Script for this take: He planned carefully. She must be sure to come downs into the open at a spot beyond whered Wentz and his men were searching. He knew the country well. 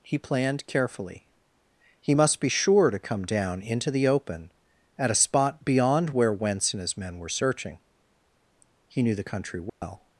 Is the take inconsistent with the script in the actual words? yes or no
yes